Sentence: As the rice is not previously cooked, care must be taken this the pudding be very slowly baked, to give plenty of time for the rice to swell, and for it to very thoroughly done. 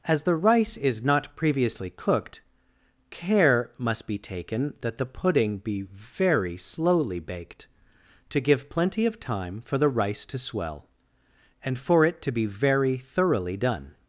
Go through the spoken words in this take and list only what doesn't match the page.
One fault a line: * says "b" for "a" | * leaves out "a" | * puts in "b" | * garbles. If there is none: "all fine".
* says "that" for "this"
* puts in "be"